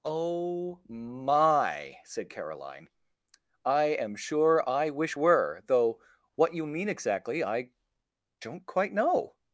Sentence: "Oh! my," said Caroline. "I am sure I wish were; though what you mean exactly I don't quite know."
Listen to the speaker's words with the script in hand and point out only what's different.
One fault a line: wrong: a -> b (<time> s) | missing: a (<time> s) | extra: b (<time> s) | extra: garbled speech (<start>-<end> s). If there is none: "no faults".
no faults